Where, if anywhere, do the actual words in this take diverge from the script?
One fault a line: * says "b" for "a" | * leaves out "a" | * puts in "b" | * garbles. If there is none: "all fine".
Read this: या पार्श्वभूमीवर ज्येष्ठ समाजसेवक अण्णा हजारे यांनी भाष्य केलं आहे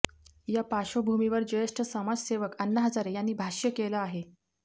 all fine